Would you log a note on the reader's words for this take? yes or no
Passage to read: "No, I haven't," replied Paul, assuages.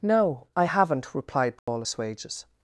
no